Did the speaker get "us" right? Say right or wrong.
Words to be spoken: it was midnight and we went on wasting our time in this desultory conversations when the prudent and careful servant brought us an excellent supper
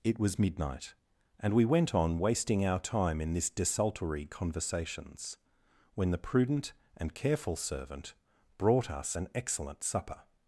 right